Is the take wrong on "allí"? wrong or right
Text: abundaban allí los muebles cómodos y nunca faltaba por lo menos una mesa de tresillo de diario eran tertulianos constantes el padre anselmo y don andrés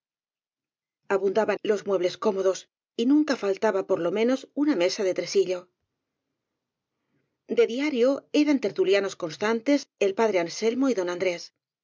wrong